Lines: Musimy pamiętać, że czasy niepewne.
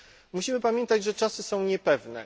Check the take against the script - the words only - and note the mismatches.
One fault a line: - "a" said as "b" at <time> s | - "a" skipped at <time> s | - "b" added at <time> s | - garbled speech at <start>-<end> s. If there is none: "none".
- "są" added at 1.4 s